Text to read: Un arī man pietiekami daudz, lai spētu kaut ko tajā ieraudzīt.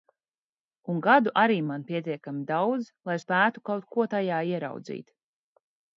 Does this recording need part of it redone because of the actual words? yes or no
yes